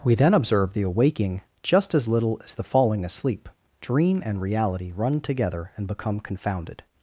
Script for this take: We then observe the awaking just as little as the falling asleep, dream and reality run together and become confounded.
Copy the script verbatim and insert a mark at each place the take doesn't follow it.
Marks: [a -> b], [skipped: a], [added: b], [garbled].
We then observe the awaking just as little as the falling asleep, dream and reality run together and become confounded.